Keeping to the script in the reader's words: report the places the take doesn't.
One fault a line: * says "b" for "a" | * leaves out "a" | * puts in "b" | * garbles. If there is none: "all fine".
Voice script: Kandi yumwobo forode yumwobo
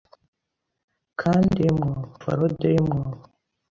all fine